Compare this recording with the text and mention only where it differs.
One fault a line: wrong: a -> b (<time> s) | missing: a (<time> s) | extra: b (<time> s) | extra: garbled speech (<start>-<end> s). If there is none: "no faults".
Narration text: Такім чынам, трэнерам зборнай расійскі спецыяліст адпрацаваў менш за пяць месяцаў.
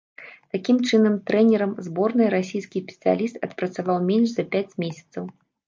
no faults